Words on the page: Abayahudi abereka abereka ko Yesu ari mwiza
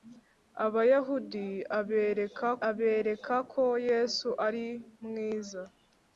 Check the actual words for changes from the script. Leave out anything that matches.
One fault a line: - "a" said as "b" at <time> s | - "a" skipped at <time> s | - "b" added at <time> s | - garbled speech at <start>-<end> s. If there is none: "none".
none